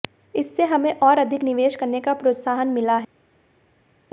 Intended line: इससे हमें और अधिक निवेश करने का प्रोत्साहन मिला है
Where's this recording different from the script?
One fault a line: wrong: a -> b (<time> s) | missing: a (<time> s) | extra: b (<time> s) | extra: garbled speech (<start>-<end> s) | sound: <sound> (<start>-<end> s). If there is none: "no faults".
no faults